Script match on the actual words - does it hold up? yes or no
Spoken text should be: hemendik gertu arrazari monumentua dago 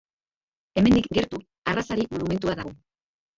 yes